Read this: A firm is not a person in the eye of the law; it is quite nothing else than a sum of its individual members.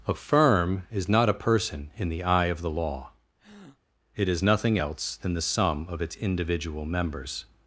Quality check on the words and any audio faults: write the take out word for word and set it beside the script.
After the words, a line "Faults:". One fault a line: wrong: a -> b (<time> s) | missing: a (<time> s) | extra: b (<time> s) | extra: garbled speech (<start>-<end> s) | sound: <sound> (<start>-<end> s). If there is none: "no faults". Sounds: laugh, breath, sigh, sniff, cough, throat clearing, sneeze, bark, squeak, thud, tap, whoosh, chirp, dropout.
A firm is not a person in the eye of the law; it is nothing else than the sum of its individual members.
Faults:
sound: breath (3.4-3.8 s)
missing: quite (4.4 s)
wrong: a -> the (5.3 s)